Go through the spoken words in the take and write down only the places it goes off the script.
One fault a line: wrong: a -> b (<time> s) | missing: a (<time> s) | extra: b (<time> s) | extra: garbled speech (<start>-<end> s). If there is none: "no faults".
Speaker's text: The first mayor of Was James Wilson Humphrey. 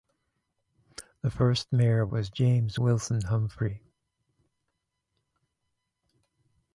no faults